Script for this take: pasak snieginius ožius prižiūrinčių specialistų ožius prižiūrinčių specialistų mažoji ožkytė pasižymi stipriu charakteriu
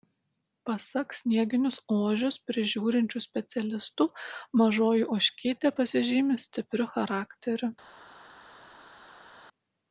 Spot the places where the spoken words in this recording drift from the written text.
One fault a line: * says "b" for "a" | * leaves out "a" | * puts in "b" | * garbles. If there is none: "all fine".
* leaves out "ožius prižiūrinčių specialistų"